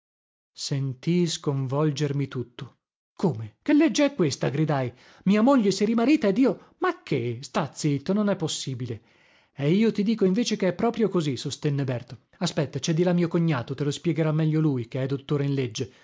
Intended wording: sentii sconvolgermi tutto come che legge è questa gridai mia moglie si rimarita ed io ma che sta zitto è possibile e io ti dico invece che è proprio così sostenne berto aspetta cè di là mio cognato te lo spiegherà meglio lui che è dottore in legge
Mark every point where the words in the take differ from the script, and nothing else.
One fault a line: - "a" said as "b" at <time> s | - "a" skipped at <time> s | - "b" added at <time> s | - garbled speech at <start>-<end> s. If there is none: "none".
- "non" added at 8.1 s